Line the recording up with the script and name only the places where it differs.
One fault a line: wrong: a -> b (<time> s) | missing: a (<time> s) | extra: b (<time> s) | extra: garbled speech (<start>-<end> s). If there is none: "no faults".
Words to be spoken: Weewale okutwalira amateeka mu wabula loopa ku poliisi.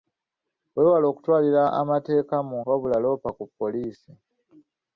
no faults